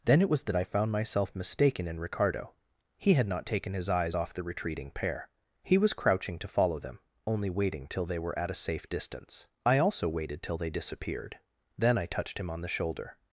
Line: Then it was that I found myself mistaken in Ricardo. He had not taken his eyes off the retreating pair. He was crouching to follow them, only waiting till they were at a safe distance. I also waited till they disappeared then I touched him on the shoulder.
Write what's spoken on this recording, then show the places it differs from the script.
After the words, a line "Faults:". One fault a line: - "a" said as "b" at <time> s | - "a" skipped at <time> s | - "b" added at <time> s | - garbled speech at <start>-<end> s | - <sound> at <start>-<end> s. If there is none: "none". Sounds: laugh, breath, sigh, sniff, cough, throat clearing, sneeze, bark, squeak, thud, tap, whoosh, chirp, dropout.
Then it was that I found myself mistaken in Ricardo. He had not taken his eyes off the retreating pair. He was crouching to follow them, only waiting till they were at a safe distance. I also waited till they disappeared then I touched him on the shoulder.
Faults:
none